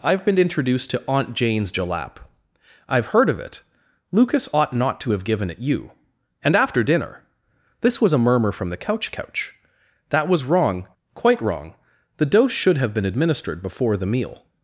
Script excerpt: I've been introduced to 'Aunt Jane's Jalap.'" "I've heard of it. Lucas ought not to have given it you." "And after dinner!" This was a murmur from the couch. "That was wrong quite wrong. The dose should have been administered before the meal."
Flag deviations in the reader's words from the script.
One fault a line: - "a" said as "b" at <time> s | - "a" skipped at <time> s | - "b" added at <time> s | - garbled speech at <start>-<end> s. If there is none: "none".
- "couch" added at 9.1 s